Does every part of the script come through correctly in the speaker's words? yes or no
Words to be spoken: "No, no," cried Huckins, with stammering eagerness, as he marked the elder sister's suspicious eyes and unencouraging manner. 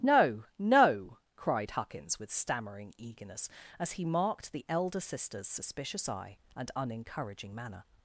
no